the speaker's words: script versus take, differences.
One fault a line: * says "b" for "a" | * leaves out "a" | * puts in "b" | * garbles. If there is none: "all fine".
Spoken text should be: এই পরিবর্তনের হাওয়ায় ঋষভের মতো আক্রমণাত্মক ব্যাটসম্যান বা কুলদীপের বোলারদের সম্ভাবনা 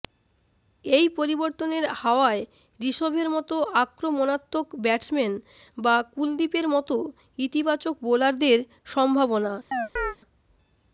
* puts in "মতো ইতিবাচক"